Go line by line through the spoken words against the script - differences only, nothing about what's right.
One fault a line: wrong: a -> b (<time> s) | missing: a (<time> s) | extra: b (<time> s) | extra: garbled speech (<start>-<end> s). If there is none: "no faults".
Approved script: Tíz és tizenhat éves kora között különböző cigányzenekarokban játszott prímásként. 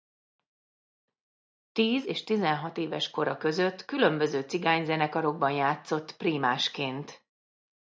no faults